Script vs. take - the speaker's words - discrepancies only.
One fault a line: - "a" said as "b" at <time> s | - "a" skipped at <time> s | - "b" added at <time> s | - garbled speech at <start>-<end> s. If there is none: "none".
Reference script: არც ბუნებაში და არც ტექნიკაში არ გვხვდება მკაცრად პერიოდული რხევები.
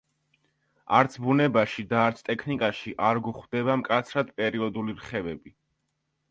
none